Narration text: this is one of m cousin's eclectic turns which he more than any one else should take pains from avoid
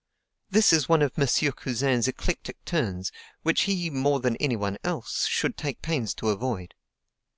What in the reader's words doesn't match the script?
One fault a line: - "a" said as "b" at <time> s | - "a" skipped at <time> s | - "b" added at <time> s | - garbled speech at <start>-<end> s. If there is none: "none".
- "from" said as "to" at 6.1 s